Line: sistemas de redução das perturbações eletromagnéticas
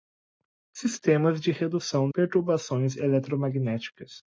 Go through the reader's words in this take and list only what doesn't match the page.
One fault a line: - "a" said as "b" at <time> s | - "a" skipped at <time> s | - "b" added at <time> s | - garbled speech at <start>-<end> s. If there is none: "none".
- "das" skipped at 2.1 s